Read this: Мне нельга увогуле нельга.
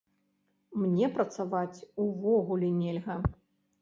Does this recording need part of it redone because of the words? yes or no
yes